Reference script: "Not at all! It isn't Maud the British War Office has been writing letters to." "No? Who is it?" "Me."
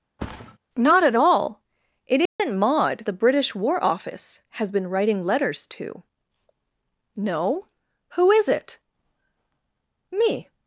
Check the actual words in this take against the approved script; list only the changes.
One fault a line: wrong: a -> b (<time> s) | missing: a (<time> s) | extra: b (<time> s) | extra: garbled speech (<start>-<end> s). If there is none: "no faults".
no faults